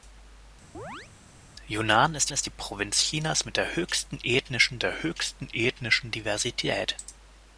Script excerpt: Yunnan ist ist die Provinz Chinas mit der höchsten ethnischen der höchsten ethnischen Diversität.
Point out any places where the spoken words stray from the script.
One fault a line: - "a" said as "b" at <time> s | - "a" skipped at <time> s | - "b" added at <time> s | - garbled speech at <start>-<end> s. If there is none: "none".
none